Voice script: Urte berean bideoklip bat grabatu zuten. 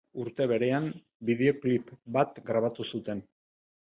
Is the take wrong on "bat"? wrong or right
right